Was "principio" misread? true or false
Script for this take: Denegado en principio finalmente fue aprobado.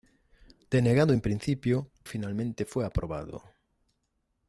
false